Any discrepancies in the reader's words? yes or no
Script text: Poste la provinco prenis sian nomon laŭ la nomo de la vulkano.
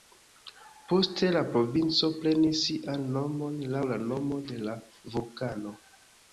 no